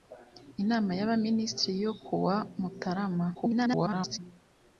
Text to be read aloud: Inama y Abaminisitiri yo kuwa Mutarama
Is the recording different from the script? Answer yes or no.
yes